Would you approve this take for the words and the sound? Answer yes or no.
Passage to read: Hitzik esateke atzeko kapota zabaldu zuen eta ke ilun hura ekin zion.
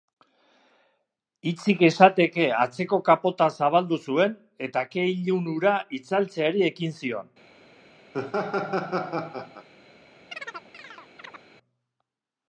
no